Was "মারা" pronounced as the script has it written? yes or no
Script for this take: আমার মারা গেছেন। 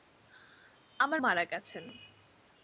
yes